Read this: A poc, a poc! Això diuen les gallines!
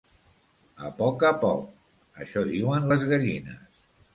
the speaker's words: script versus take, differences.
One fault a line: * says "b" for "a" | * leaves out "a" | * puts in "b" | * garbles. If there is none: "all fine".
all fine